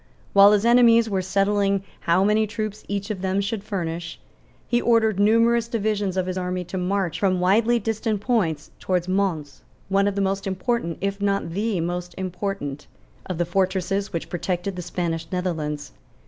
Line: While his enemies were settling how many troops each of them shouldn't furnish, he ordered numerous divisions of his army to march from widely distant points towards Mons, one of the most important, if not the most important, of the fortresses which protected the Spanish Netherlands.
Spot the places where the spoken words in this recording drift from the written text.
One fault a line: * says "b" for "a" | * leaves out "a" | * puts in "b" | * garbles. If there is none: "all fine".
* says "should" for "shouldn't"